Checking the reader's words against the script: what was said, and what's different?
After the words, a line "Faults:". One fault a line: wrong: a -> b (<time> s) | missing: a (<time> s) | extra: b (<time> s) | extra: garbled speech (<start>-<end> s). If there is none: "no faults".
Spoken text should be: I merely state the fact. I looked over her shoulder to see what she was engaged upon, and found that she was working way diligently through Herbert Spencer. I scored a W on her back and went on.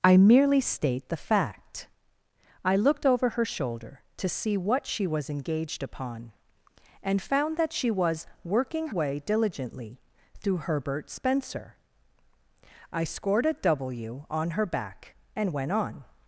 I merely state the fact. I looked over her shoulder to see what she was engaged upon, and found that she was working way diligently through Herbert Spencer. I scored a W on her back and went on.
Faults:
no faults